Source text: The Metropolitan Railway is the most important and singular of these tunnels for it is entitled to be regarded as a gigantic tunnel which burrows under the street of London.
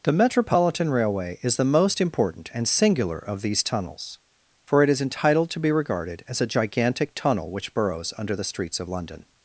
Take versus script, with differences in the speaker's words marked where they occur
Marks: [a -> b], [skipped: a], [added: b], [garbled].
The Metropolitan Railway is the most important and singular of these tunnels for it is entitled to be regarded as a gigantic tunnel which burrows under the [street -> streets] of London.